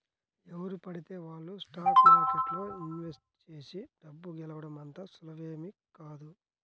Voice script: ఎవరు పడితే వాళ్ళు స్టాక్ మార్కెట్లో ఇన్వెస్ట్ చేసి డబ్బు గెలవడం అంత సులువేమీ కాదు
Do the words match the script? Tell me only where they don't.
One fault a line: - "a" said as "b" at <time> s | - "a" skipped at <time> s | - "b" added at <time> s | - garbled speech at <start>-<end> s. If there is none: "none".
none